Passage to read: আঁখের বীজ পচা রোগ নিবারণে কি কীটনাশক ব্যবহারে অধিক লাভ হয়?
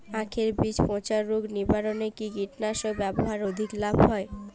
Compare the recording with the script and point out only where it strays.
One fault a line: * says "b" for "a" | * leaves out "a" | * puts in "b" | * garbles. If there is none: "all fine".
all fine